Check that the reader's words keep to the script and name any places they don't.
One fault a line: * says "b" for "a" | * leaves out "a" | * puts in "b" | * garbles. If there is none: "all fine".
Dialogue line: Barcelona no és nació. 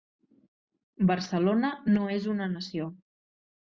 * puts in "una"